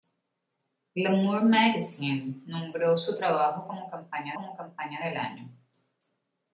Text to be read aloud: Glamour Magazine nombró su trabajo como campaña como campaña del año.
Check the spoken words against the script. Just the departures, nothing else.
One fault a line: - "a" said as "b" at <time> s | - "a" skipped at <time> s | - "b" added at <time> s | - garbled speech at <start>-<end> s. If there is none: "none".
none